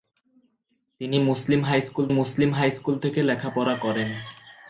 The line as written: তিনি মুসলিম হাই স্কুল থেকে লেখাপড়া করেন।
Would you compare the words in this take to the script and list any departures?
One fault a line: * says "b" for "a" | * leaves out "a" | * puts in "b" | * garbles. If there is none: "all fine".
* puts in "মুসলিম হাই স্কুল"